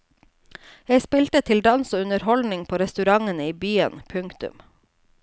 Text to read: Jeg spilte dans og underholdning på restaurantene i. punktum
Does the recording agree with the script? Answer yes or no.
no